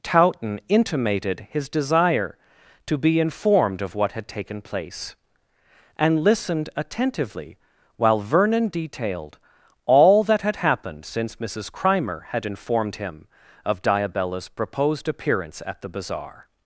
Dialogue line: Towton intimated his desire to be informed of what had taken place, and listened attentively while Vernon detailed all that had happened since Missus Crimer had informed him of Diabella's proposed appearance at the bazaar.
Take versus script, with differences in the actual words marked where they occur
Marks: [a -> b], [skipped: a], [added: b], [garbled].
Towton intimated his desire to be informed of what had taken place, and listened attentively while Vernon detailed all that had happened since Missus Crimer had informed him of Diabella's proposed appearance at the bazaar.